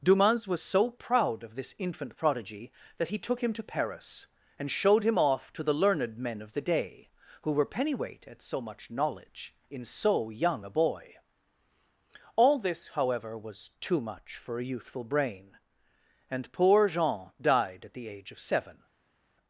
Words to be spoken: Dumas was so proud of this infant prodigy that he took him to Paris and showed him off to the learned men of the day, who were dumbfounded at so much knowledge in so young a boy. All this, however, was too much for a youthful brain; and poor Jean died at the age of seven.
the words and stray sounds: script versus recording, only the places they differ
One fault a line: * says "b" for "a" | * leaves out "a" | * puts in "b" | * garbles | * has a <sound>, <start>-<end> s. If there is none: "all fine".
* says "pennyweight" for "dumbfounded"